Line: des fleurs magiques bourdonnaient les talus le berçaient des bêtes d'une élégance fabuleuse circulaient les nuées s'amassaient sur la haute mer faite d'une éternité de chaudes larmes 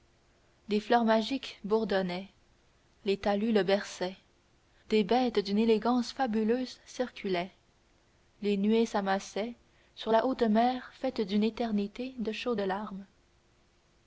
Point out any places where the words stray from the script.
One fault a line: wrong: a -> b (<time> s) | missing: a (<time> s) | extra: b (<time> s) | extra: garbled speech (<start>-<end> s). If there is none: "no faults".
no faults